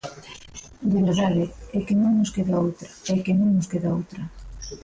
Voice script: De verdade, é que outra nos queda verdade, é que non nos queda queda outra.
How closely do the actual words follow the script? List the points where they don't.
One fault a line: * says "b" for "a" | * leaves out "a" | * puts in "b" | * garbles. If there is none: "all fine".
* says "non" for "outra"
* says "outra" for "verdade"
* leaves out "queda"